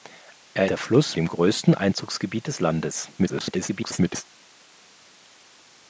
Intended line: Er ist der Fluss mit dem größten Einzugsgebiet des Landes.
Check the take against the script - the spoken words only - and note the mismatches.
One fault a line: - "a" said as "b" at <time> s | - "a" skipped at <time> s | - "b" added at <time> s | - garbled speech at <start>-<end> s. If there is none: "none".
- "ist" skipped at 0.7 s
- "mit" skipped at 1.2 s
- garbled speech at 3.2-4.3 s